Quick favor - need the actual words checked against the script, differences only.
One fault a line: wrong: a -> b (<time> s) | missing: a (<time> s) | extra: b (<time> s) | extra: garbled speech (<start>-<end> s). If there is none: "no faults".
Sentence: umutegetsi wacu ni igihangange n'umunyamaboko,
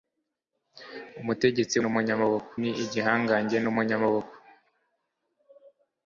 wrong: wacu -> n'umunyamaboko (1.8 s)